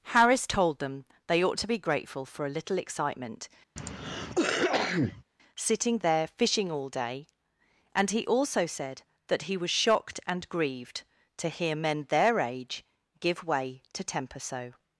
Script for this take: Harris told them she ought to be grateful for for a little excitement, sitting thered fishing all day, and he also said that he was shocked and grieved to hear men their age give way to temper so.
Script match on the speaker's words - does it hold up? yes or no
no